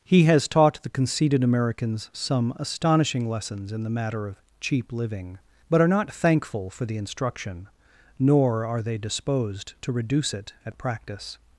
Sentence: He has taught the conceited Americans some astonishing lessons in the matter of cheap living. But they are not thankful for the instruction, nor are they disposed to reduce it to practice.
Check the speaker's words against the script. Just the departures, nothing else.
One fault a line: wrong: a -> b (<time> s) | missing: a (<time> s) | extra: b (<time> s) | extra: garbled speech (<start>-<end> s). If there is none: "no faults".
missing: they (5.8 s)
wrong: to -> at (10.7 s)